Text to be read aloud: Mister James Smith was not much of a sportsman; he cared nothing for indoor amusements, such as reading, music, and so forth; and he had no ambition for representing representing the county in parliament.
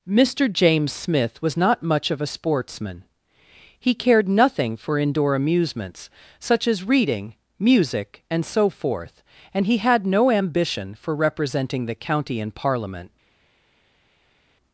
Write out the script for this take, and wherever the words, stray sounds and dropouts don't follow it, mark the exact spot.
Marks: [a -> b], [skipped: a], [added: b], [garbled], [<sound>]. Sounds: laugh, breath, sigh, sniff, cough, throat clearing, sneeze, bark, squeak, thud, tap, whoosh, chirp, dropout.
Mister James Smith was not much of a sportsman; he cared nothing for indoor amusements, such as reading, music, and so forth; and he had no ambition for representing [skipped: representing] the county in parliament.